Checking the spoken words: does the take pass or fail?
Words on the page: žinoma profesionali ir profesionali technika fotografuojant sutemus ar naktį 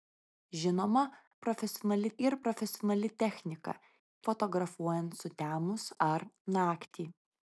pass